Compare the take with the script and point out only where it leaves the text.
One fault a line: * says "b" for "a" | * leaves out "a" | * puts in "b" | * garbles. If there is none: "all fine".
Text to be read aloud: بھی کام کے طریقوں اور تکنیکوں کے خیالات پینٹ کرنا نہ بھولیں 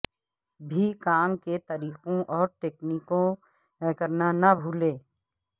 * leaves out "کے خیالات پینٹ"